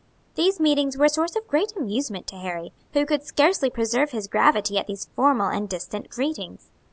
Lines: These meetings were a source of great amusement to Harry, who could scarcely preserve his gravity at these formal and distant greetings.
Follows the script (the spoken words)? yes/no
yes